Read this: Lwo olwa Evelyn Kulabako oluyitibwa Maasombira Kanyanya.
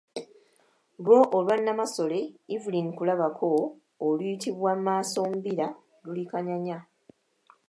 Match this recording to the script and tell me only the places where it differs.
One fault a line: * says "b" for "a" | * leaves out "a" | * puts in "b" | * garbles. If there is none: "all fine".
* puts in "Nnamasole"
* puts in "luli"